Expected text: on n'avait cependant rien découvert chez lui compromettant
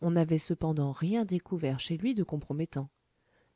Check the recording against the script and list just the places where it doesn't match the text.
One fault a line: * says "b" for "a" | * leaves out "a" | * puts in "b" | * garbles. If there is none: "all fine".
* puts in "de"